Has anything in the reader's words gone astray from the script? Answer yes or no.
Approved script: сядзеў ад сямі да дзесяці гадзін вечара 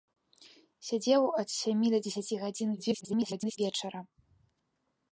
yes